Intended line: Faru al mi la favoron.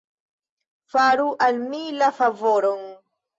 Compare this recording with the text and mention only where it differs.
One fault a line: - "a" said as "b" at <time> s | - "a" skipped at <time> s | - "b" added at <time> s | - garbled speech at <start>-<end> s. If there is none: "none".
none